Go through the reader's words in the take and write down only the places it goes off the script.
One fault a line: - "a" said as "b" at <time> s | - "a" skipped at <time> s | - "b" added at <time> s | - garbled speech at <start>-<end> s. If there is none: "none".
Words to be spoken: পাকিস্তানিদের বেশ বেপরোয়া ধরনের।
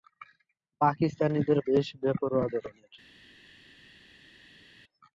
none